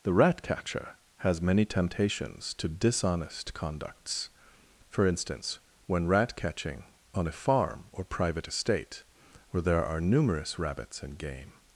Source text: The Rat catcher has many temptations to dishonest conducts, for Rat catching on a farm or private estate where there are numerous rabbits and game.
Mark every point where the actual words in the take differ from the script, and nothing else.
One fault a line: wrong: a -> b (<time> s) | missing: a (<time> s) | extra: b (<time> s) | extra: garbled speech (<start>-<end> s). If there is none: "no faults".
extra: instance when (5.0 s)